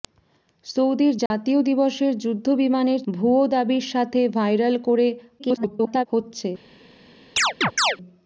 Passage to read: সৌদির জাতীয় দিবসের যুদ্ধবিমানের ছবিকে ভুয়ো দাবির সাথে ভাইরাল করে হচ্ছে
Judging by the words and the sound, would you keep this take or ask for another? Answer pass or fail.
fail